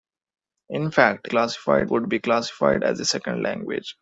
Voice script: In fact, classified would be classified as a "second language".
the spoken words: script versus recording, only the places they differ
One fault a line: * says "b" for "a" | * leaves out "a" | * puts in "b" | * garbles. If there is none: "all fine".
all fine